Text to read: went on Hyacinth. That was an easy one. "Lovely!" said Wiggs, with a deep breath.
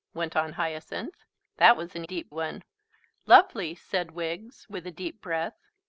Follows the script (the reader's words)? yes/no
no